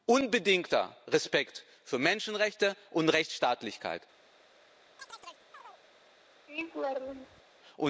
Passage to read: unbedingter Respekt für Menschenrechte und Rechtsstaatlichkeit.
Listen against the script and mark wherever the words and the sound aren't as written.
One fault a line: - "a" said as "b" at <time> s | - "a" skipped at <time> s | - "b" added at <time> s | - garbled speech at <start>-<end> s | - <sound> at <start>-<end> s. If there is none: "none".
- chirp at 5.0-5.8 s
- laugh at 6.5-7.4 s